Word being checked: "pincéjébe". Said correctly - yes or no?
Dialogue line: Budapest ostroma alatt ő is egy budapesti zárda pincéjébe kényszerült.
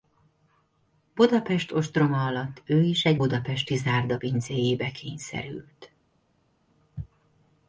yes